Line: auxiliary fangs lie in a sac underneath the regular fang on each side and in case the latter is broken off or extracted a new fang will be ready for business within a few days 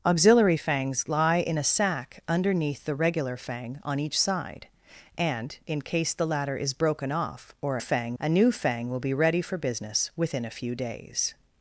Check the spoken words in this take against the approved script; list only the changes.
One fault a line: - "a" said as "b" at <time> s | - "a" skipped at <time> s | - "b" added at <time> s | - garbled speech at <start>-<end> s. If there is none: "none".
- "extracted" said as "fang" at 7.8 s